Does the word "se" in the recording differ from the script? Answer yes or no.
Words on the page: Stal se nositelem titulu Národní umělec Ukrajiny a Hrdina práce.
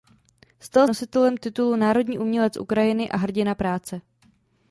yes